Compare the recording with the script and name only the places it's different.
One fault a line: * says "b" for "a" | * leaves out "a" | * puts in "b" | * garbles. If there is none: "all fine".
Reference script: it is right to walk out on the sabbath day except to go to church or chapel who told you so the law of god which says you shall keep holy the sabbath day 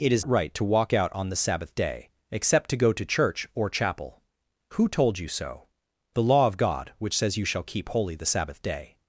all fine